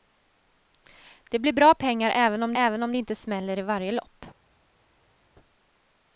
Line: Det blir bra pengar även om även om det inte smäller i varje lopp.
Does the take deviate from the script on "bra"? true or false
false